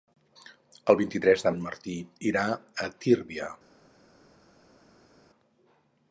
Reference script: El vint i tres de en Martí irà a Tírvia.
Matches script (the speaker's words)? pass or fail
pass